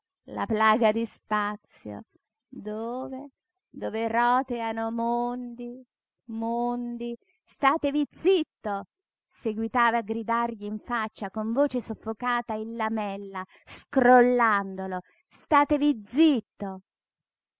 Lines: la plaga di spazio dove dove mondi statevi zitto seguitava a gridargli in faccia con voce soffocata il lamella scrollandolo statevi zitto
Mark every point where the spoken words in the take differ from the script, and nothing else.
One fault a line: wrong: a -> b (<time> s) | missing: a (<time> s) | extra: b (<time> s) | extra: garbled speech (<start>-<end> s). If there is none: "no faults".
extra: roteano mondi (4.1 s)